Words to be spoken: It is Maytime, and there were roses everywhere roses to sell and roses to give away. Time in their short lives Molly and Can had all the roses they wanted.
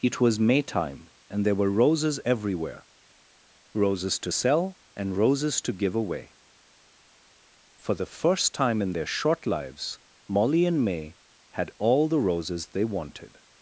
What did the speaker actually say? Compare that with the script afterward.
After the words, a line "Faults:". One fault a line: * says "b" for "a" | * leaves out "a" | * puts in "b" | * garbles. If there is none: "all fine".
It was Maytime, and there were roses everywhere roses to sell and roses to give away. For the first time in their short lives Molly and May had all the roses they wanted.
Faults:
* says "was" for "is"
* puts in "For the first"
* says "May" for "Can"